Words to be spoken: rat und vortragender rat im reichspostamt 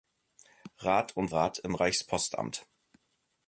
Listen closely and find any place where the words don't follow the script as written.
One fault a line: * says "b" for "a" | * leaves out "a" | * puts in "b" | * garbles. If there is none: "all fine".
* leaves out "vortragender"